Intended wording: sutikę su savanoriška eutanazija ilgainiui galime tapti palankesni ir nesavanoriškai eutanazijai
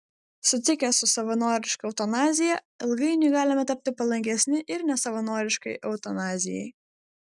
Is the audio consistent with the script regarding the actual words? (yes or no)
yes